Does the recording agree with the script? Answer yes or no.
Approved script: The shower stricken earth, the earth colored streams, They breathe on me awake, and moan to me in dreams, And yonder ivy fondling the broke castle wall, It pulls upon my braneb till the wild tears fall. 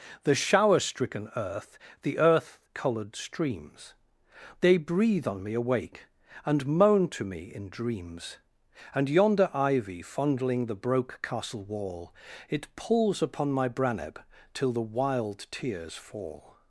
yes